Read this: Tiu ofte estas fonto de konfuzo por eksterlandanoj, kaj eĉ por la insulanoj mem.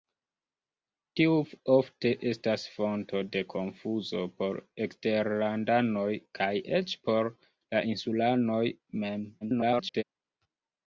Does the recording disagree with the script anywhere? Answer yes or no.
yes